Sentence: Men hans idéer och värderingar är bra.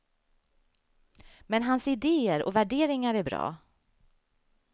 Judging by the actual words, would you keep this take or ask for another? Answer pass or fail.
pass